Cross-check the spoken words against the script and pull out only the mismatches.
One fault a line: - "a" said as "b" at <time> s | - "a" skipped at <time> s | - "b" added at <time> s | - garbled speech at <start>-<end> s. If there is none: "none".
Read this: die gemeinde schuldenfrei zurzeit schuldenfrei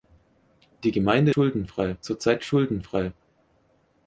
none